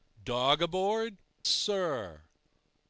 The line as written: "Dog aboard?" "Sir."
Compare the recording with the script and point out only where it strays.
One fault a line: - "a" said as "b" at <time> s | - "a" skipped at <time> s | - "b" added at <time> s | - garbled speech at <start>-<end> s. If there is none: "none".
none